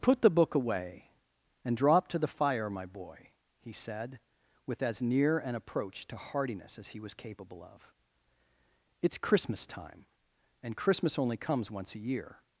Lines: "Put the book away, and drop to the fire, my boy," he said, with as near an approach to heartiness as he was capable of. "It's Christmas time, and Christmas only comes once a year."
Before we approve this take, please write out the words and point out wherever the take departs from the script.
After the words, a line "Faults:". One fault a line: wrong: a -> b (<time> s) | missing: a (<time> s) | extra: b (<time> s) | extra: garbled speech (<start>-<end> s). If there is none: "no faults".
"Put the book away, and drop to the fire, my boy," he said, with as near an approach to heartiness as he was capable of. "It's Christmas time, and Christmas only comes once a year."
Faults:
no faults